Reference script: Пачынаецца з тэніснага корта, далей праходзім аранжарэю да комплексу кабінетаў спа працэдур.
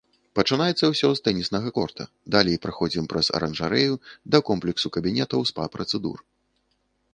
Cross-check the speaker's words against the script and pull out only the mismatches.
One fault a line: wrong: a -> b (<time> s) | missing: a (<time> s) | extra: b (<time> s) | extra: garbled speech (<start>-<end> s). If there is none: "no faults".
extra: ўсё (0.9 s)
extra: праз (3.1 s)